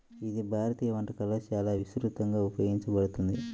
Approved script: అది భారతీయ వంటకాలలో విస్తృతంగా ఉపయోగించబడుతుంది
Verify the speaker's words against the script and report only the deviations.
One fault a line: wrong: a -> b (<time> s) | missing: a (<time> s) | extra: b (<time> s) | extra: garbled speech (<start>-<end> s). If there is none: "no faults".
wrong: అది -> ఇది (0.3 s)
extra: చాలా (1.5 s)